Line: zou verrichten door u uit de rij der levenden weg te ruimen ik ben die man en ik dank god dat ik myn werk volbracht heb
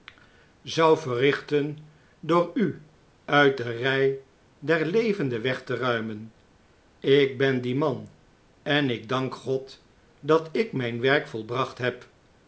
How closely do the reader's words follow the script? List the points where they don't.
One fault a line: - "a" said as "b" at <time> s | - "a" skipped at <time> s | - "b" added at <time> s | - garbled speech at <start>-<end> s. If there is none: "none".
none